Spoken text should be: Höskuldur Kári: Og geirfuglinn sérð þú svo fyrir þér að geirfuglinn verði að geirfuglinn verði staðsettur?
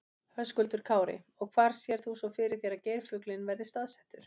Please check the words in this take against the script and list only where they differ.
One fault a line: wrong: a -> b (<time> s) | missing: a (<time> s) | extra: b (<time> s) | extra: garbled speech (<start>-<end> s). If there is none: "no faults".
wrong: geirfuglinn -> hvar (1.6 s)
missing: að geirfuglinn verði (3.7 s)